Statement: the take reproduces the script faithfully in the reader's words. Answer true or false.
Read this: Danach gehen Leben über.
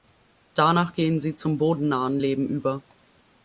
false